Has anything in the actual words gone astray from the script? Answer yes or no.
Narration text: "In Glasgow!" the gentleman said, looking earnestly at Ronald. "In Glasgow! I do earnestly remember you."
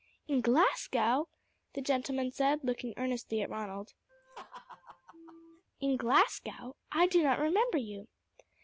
yes